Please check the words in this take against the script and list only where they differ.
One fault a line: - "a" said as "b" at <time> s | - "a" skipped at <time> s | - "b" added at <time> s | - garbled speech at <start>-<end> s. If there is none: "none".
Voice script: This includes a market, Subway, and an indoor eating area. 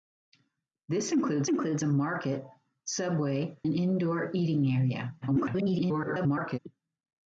- "includes" added at 1.5 s
- "and" skipped at 3.6 s
- garbled speech at 5.2-6.6 s